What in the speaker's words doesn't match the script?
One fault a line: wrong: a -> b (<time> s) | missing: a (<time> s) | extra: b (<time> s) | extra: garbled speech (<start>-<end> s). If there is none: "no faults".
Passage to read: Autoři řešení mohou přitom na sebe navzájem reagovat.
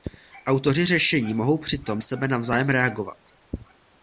missing: na (2.0 s)